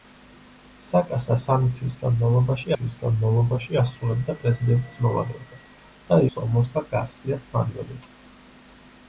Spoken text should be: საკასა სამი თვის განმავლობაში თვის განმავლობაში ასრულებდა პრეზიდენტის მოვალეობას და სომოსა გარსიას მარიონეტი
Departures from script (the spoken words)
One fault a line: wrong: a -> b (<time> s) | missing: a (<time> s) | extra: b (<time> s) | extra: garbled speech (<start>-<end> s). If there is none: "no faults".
no faults